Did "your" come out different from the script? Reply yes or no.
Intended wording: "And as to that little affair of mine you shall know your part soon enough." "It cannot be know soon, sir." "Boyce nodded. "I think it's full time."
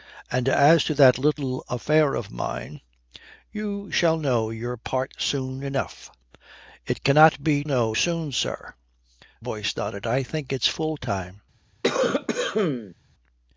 no